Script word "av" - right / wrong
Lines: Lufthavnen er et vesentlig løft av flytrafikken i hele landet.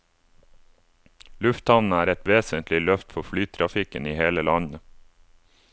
wrong